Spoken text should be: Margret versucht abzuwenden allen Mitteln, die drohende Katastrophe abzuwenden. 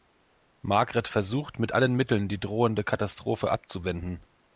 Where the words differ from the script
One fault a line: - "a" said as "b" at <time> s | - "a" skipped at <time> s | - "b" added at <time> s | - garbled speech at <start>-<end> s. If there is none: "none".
- "abzuwenden" said as "mit" at 1.6 s